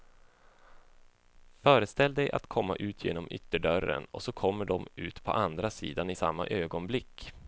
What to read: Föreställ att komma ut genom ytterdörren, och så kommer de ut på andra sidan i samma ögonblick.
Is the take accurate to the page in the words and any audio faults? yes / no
no